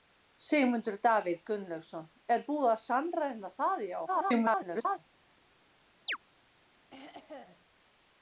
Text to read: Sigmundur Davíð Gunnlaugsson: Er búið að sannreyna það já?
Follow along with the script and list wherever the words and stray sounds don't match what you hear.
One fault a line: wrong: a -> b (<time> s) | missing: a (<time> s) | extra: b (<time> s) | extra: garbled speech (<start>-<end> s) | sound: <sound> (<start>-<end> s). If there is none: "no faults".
extra: garbled speech (4.1-5.0 s)
sound: chirp (6.1-6.2 s)
sound: throat clearing (6.9-7.6 s)